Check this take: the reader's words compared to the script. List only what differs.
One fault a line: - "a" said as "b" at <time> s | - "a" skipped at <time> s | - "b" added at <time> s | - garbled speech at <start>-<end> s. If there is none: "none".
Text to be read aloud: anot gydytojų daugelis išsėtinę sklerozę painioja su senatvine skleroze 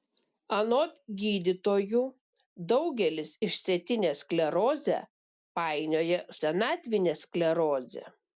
- "su" skipped at 6.3 s